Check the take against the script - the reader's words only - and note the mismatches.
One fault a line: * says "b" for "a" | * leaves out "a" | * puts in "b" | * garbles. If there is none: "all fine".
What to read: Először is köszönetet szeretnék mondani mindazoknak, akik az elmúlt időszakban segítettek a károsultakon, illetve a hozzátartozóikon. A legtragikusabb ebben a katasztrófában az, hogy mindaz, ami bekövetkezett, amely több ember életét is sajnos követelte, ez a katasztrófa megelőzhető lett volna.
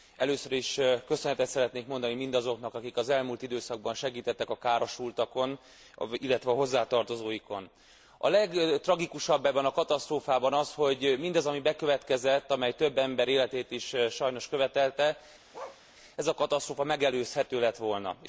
all fine